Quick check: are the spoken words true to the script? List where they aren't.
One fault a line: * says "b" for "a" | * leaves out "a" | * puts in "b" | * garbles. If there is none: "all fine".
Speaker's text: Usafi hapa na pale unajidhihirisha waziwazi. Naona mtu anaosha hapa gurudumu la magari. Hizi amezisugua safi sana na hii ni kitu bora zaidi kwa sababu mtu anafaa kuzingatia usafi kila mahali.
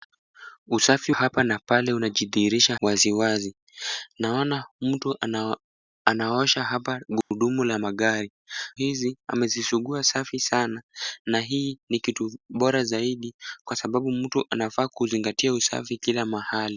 all fine